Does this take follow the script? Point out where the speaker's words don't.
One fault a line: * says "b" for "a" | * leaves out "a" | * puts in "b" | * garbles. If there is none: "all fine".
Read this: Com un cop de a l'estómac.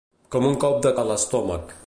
all fine